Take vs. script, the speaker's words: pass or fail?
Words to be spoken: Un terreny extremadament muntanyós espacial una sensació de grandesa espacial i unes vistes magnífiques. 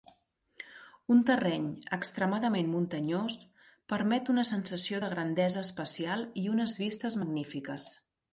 fail